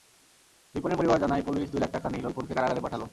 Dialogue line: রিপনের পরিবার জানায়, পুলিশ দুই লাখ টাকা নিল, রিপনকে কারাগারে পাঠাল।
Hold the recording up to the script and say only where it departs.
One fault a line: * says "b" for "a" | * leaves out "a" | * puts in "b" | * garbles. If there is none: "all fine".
all fine